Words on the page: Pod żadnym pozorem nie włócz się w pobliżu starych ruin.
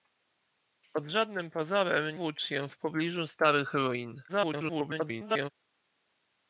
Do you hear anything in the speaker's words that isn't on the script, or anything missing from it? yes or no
yes